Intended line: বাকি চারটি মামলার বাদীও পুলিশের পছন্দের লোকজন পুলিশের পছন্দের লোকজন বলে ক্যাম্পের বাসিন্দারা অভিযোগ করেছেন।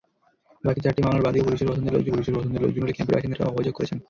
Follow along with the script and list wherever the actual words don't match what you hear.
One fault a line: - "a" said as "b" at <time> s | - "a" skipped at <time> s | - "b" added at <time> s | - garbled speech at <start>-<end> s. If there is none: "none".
none